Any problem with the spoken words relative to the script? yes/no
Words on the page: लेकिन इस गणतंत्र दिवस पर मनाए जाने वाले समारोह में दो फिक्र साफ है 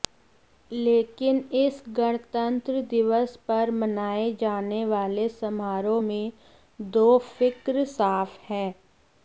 no